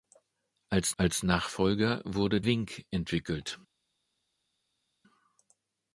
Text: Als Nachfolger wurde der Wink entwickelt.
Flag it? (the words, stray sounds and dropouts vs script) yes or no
yes